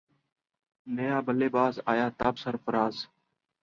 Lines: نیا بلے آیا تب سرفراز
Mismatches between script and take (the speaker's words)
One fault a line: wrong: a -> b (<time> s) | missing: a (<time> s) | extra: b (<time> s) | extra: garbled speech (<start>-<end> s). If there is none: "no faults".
extra: باز (1.6 s)